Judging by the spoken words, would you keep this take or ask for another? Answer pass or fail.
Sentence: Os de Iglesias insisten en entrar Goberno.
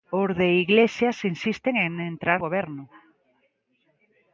pass